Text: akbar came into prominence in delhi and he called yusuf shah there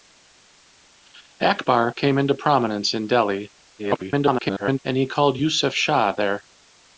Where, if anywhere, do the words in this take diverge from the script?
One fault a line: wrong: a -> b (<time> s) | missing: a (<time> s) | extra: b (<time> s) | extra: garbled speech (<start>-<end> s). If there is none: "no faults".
extra: garbled speech (3.8-4.8 s)